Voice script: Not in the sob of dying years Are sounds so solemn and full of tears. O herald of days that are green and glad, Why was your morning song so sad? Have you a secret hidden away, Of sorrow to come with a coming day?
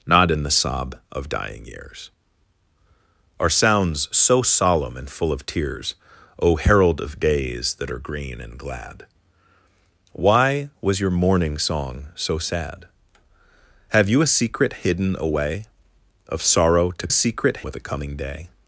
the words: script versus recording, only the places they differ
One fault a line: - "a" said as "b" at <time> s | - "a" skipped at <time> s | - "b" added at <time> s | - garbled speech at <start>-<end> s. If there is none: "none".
- "come" said as "secret" at 17.1 s